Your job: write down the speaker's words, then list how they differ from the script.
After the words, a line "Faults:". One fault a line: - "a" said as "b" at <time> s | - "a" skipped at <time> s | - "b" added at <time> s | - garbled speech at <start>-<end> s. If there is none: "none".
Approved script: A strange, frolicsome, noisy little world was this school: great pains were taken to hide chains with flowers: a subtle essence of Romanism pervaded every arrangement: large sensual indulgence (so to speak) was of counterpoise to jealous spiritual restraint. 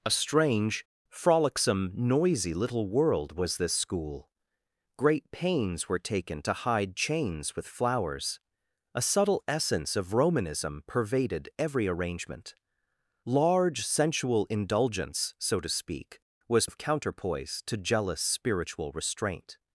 A strange, frolicsome, noisy little world was this school: great pains were taken to hide chains with flowers: a subtle essence of Romanism pervaded every arrangement: large sensual indulgence (so to speak) was of counterpoise to jealous spiritual restraint.
Faults:
none